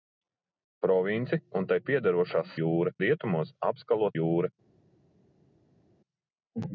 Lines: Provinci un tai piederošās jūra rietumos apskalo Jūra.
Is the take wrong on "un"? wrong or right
right